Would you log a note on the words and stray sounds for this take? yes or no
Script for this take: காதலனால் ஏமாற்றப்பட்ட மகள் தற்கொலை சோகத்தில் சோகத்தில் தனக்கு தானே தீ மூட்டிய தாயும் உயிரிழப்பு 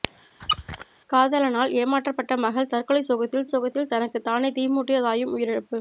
yes